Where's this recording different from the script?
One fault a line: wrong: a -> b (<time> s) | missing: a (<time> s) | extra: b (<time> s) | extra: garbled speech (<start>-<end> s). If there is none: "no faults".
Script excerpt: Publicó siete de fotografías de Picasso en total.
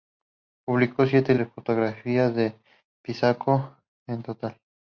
no faults